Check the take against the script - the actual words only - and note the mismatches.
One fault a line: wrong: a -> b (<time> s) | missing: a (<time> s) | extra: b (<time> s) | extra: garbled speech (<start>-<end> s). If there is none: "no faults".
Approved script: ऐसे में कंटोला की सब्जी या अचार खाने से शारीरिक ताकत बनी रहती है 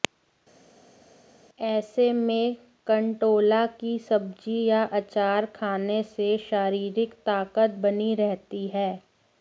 no faults